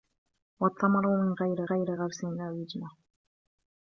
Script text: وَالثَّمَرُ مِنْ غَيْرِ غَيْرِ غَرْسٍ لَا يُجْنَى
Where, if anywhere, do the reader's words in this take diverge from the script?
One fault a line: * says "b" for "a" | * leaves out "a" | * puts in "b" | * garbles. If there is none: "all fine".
all fine